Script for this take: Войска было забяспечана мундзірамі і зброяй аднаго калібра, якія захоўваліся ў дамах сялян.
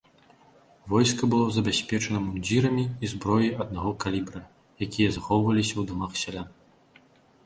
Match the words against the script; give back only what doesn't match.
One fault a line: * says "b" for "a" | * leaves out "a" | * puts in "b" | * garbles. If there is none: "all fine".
all fine